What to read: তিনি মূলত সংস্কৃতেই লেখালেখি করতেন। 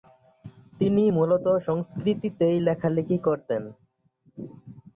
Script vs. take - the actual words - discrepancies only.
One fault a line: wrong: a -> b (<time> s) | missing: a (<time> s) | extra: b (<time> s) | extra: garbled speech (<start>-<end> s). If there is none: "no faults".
no faults